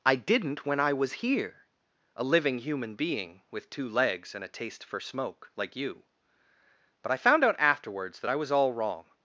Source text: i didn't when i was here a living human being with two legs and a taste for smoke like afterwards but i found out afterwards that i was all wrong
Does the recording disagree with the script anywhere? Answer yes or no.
yes